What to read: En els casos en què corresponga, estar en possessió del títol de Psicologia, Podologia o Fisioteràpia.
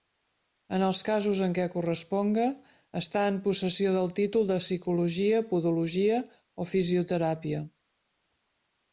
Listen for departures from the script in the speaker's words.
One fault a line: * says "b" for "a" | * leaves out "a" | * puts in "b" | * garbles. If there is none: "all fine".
all fine